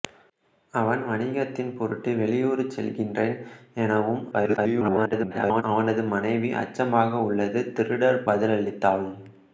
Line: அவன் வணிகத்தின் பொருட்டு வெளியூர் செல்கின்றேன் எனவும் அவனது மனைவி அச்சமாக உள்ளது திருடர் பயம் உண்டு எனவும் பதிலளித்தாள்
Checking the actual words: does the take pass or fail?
fail